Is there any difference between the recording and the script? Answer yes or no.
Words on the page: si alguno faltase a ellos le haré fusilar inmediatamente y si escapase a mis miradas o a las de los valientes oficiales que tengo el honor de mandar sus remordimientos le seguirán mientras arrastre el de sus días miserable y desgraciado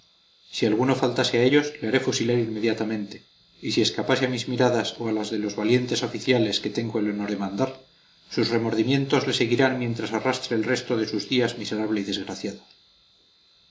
yes